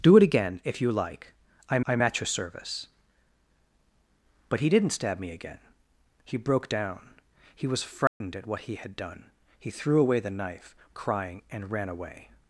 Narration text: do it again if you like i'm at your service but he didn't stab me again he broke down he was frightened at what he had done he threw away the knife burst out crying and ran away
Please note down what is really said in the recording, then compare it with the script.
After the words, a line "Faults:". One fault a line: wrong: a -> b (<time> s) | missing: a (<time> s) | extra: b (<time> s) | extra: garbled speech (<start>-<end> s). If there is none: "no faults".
do it again if you like i'm i'm at your service but he didn't stab me again he broke down he was frightened at what he had done he threw away the knife crying and ran away
Faults:
extra: i'm (1.9 s)
missing: burst out (10.8 s)